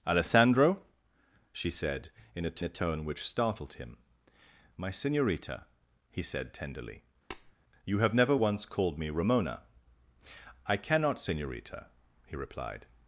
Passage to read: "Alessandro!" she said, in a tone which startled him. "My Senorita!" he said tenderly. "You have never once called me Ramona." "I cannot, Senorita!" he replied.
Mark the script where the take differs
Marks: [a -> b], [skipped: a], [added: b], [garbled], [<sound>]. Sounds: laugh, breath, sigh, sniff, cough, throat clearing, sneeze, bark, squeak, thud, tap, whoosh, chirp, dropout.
"Alessandro!" she said, in a [added: a] tone which startled him. "My Senorita!" he said tenderly. [tap] "You have never once called me Ramona." "I cannot, Senorita!" he replied.